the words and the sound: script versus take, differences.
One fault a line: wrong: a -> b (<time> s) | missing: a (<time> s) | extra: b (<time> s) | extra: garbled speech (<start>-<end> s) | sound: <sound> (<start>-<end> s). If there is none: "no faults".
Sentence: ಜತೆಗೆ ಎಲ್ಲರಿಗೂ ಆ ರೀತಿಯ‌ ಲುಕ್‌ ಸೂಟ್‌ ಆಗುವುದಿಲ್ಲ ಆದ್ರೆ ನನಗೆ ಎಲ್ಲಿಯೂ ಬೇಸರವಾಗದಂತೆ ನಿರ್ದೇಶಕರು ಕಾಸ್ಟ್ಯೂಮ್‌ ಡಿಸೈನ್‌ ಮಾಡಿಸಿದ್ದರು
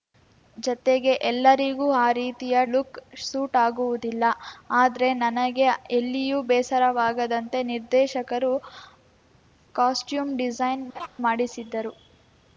sound: laugh (10.9-11.1 s)